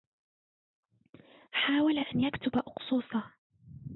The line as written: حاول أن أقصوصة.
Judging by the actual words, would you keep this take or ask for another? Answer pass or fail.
fail